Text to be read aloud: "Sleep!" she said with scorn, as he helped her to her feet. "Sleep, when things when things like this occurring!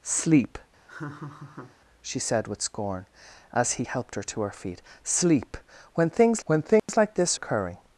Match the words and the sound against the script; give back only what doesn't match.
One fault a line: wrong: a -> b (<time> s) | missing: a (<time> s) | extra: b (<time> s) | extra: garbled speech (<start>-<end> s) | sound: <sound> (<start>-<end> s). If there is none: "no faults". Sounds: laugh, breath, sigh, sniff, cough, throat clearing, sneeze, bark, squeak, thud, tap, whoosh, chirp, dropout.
sound: laugh (0.9-1.8 s)
sound: dropout (6.8-6.9 s)